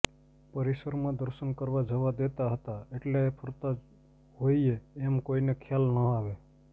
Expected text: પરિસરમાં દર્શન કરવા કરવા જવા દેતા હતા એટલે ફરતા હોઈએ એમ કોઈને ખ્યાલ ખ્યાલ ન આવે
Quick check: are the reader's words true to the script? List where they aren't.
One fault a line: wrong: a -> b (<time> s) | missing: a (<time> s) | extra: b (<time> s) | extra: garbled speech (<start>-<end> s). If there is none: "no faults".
missing: કરવા (1.8 s)
missing: ખ્યાલ (5.9 s)